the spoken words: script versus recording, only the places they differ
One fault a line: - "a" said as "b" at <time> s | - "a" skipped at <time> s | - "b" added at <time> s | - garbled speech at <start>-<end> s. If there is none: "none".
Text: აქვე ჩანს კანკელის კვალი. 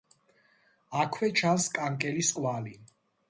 none